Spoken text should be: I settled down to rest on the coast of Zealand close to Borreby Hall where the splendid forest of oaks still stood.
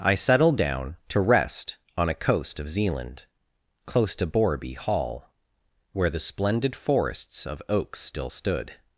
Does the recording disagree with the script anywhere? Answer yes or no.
yes